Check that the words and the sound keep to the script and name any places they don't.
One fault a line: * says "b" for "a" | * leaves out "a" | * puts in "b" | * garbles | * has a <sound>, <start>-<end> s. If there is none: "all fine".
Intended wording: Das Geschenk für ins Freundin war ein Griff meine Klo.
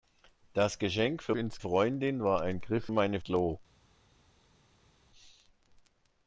all fine